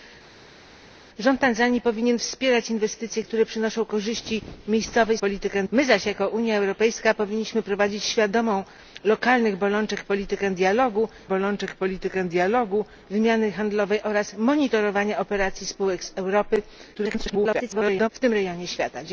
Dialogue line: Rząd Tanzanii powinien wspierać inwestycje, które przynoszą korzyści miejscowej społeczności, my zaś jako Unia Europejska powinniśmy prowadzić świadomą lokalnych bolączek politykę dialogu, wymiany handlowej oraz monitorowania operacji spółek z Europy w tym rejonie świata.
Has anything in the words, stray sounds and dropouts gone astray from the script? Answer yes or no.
yes